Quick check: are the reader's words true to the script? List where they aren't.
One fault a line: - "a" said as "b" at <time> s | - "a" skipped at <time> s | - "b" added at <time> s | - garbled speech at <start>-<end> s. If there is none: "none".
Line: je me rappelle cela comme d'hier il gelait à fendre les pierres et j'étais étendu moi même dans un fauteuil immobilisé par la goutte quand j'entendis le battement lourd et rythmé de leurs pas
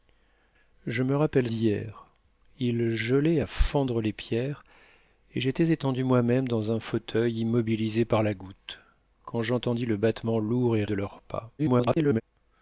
- "cela comme" skipped at 1.5 s
- "rythmé" skipped at 10.8 s
- garbled speech at 11.6-12.2 s